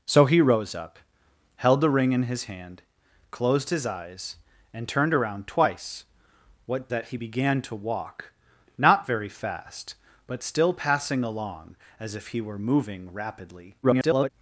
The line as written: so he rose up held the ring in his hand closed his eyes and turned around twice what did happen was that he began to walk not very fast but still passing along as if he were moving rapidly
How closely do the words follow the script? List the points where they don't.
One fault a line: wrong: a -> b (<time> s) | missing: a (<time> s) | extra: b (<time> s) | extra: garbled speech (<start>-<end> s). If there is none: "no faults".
missing: did happen was (6.9 s)
extra: garbled speech (13.8-14.3 s)